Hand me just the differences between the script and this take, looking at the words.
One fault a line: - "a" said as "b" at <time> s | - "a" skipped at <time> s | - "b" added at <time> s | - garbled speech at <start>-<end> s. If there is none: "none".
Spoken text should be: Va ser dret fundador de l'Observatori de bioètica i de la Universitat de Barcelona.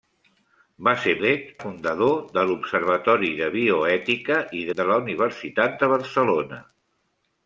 none